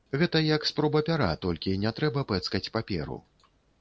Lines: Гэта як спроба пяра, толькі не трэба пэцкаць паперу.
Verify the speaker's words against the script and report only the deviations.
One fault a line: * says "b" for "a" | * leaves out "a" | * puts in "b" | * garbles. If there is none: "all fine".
all fine